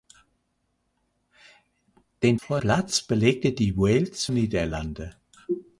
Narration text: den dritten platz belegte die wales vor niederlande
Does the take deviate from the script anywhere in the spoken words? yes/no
yes